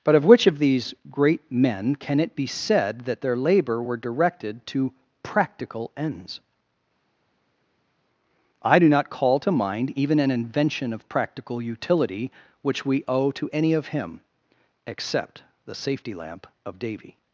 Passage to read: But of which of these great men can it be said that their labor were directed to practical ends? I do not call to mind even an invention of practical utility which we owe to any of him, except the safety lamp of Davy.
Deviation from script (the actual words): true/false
false